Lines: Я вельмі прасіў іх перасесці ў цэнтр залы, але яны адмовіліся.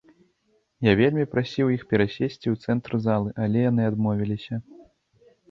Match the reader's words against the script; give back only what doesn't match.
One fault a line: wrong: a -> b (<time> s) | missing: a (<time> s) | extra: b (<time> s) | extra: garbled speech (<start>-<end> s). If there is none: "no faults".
no faults